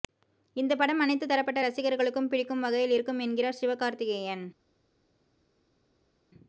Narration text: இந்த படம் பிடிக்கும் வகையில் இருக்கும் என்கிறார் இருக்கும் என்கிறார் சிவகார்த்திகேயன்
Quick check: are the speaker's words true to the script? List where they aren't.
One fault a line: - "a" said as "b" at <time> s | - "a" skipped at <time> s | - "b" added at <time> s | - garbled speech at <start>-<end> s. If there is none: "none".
- "அனைத்து தரப்பட்ட ரசிகர்களுக்கும்" added at 1.0 s
- "இருக்கும் என்கிறார்" skipped at 3.6 s